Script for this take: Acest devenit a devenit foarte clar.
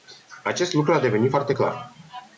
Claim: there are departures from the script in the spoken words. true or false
true